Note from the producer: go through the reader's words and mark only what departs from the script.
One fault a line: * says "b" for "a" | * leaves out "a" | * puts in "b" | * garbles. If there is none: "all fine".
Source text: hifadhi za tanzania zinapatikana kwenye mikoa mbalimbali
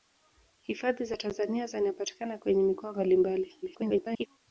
* garbles